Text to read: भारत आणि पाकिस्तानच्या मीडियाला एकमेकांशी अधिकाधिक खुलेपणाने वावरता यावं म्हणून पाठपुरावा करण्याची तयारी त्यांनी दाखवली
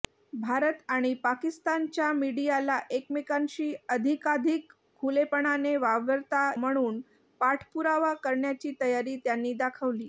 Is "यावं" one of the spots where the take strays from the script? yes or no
yes